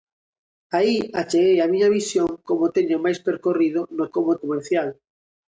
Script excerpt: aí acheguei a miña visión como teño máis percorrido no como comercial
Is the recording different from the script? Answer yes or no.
no